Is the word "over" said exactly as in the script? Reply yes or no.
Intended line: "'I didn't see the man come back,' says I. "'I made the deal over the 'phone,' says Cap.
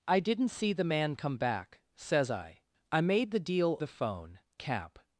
no